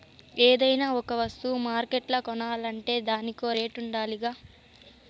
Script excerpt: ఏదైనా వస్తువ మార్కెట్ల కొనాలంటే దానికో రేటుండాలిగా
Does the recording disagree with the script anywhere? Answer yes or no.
yes